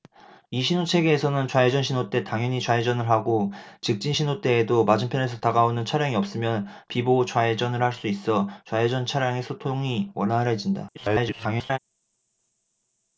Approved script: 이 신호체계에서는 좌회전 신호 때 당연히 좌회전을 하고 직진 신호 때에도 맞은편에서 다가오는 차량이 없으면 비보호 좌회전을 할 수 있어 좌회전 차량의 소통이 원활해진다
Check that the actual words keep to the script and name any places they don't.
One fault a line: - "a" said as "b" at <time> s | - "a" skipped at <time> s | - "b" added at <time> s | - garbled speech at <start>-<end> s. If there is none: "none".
- garbled speech at 10.9-11.8 s